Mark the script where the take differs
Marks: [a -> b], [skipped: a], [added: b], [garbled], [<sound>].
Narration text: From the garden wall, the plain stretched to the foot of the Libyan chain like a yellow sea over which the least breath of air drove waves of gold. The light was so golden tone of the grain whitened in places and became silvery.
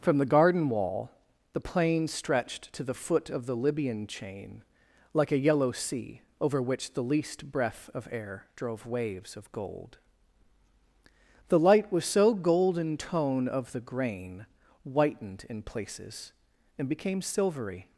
From the garden wall, the plain stretched to the foot of the Libyan chain like a yellow sea over which the least breath of air drove waves of gold. The light was so golden tone of the grain whitened in places and became silvery.